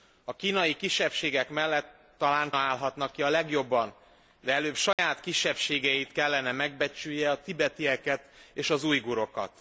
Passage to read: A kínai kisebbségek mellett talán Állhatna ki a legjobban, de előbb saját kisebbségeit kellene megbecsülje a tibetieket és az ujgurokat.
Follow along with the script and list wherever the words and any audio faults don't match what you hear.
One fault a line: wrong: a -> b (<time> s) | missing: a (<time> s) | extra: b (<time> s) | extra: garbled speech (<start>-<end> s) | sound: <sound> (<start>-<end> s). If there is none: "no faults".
sound: dropout (4.9-5.0 s)